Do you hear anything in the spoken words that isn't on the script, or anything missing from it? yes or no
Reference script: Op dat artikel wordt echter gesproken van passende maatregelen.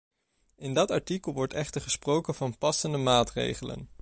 yes